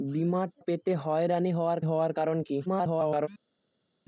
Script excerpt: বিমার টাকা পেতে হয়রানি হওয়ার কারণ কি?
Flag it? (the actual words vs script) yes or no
yes